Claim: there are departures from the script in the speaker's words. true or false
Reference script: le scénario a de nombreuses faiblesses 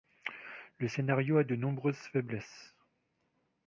false